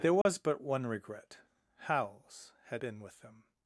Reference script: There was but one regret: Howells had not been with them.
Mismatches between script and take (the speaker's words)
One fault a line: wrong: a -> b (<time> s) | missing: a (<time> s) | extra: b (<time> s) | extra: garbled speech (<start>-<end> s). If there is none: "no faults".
missing: not (2.8 s)